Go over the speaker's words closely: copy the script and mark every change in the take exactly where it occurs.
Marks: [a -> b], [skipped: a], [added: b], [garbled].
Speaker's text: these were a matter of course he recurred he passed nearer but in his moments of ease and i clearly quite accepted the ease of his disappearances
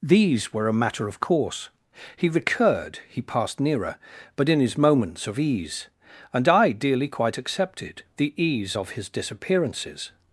these were a matter of course he recurred he passed nearer but in his moments of ease and i [clearly -> dearly] quite accepted the ease of his disappearances